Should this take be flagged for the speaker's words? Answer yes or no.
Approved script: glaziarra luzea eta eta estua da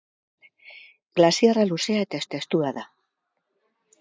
no